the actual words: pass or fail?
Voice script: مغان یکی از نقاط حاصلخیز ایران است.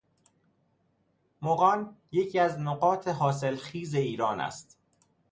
pass